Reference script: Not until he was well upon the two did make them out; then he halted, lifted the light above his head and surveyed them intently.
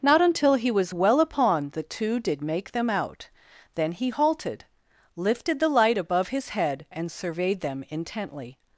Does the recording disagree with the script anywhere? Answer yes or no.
no